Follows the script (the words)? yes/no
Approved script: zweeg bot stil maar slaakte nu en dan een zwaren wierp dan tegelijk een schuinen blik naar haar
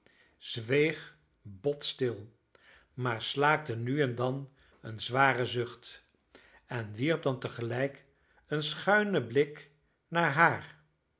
no